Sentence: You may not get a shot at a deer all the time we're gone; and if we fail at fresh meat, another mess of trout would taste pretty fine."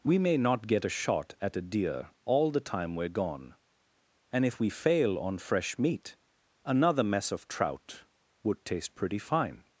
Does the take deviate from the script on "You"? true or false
true